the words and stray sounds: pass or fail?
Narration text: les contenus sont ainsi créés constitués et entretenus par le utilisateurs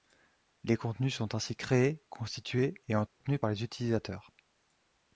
fail